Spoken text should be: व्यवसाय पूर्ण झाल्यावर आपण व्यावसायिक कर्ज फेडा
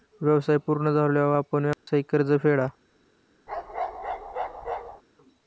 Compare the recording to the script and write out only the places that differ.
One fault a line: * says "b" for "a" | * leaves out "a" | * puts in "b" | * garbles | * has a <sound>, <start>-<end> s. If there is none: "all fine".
* has a dropout, 1.7-1.9 s
* has a bark, 3.5-5.0 s